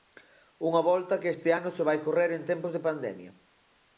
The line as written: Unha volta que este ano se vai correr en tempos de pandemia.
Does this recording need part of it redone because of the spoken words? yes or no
no